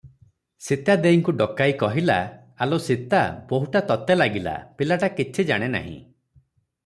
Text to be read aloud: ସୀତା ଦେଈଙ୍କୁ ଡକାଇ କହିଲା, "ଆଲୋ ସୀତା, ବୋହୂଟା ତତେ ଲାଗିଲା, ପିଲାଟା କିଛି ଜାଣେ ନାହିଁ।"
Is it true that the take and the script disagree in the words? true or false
false